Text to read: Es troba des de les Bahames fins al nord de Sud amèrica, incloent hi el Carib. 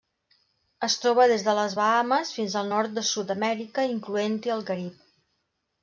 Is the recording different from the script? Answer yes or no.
no